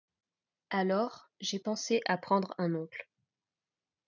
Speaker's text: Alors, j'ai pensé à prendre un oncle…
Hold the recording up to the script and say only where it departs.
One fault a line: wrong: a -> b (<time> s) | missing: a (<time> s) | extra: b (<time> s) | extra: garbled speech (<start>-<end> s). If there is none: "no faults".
no faults